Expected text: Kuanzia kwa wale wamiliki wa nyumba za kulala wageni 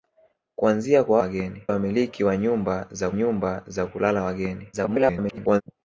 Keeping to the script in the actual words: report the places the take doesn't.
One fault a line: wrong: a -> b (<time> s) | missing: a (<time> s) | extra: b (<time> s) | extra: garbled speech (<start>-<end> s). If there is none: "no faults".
wrong: wale -> wageni (1.2 s)
extra: nyumba za (3.1 s)
extra: garbled speech (4.7-5.6 s)